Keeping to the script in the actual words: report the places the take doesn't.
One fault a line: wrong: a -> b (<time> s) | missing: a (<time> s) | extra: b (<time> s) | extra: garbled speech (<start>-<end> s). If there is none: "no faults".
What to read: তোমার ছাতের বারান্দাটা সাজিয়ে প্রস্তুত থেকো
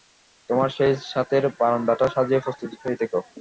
extra: সেই (0.7 s)
extra: হয়ে (2.8 s)